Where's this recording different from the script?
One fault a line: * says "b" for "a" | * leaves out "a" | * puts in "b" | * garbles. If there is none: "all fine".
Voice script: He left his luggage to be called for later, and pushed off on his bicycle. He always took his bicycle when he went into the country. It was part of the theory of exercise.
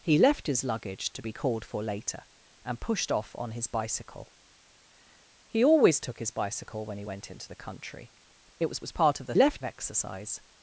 * puts in "was"
* says "left" for "theory"